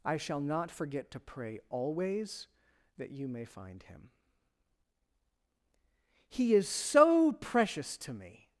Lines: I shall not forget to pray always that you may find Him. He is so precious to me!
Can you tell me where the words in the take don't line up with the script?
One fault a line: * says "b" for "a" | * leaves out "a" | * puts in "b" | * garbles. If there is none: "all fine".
all fine